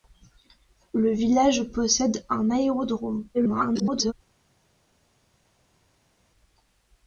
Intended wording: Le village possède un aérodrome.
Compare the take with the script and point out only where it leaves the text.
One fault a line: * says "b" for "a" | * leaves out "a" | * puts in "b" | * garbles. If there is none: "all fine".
* garbles